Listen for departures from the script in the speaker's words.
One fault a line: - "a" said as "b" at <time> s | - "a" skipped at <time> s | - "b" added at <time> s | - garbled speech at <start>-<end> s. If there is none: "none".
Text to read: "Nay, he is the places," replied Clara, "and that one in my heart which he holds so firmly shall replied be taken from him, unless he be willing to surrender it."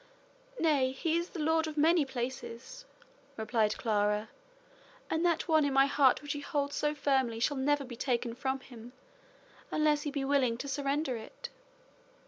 - "lord of many" added at 1.4 s
- "replied" said as "never" at 7.6 s